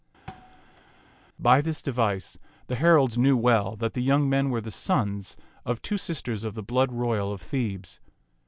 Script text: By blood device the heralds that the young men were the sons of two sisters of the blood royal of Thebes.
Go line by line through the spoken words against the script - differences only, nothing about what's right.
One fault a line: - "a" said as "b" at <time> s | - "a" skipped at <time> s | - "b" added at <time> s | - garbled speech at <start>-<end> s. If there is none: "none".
- "blood" said as "this" at 1.6 s
- "knew well" added at 3.2 s